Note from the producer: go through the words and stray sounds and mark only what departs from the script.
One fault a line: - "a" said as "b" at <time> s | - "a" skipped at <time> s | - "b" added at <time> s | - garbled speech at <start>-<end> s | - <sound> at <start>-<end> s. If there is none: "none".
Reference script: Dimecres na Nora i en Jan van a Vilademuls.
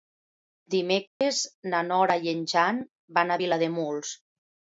- dropout at 1.1-1.2 s